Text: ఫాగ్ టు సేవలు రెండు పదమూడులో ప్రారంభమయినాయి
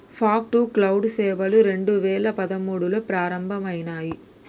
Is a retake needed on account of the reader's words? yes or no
yes